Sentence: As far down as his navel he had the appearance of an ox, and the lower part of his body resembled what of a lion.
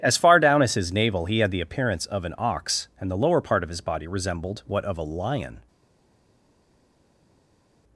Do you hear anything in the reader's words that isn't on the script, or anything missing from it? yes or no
no